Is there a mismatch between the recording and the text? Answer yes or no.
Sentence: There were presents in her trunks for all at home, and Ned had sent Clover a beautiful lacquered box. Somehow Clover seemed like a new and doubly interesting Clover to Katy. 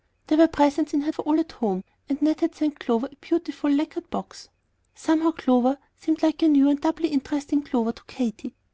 yes